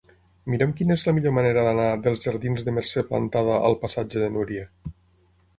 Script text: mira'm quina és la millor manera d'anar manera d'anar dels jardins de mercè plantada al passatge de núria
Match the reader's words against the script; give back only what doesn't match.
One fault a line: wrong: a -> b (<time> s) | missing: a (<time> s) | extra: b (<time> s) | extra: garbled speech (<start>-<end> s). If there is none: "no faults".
missing: manera d'anar (1.9 s)